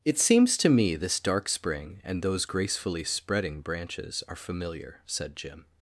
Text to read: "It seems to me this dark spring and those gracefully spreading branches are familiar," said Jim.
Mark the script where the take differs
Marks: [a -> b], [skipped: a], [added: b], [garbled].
"It seems to me this dark spring and those gracefully spreading branches are familiar," said Jim.